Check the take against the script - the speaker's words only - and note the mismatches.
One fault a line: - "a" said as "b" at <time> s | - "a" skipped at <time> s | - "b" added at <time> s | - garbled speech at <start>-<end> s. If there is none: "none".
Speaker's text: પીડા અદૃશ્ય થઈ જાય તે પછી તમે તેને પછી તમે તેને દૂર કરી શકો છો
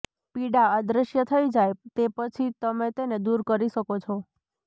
- "પછી તમે તેને" skipped at 3.2 s